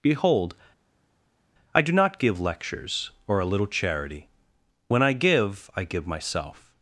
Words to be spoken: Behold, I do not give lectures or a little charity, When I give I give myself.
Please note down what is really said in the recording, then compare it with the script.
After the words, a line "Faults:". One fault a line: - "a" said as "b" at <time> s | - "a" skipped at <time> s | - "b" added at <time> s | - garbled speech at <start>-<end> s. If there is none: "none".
Behold, I do not give lectures or a little charity, When I give I give myself.
Faults:
none